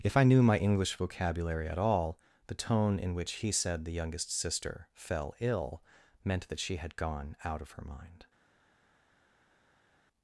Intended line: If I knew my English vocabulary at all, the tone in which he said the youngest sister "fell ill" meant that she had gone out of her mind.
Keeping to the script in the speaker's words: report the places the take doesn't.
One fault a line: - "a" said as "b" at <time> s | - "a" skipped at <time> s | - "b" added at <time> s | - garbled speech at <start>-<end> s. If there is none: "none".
none